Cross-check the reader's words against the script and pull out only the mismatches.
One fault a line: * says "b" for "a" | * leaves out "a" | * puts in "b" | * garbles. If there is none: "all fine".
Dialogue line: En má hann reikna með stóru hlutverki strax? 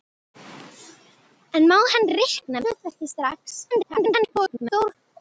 * leaves out "með stóru"
* garbles